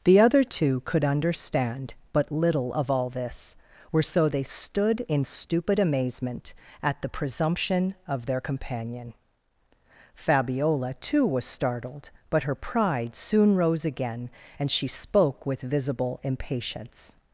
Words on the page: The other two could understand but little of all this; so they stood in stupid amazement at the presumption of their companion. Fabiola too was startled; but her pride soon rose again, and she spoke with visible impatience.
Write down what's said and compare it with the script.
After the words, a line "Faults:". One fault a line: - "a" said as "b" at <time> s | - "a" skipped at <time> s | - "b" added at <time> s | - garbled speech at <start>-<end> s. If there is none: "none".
The other two could understand but little of all this; were so they stood in stupid amazement at the presumption of their companion. Fabiola too was startled; but her pride soon rose again, and she spoke with visible impatience.
Faults:
- "were" added at 3.9 s